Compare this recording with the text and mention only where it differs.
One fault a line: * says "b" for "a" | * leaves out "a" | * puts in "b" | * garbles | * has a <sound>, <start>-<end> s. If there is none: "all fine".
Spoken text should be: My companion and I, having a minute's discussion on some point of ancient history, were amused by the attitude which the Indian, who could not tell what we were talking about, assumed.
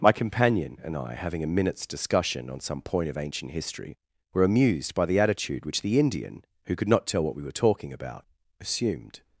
all fine